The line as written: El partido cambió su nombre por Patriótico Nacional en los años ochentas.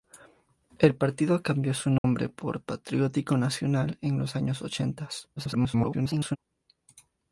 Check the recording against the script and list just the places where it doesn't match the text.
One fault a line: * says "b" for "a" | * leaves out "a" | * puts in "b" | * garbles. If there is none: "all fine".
* garbles